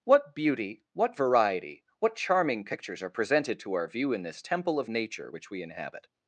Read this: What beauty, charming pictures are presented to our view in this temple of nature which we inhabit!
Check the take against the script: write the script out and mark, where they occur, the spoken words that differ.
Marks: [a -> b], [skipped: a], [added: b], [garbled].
What beauty, [added: what variety what] charming pictures are presented to our view in this temple of nature which we inhabit!